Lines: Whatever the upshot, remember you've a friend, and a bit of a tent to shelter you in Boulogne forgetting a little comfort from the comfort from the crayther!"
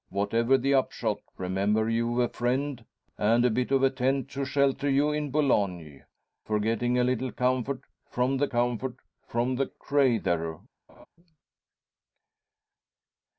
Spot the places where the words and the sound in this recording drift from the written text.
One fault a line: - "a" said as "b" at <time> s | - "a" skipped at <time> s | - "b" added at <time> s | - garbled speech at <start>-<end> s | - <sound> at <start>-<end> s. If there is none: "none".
- laugh at 10.9-11.1 s